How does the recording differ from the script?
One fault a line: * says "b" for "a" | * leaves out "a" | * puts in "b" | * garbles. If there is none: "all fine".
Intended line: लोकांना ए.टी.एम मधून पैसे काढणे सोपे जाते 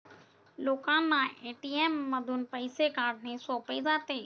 all fine